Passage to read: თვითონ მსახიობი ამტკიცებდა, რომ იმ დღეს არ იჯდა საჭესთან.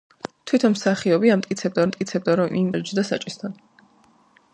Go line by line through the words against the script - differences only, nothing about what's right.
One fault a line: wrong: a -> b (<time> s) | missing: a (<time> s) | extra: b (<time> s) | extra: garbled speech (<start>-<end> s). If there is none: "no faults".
extra: ამტკიცებდა (1.8 s)
missing: დღეს (2.7 s)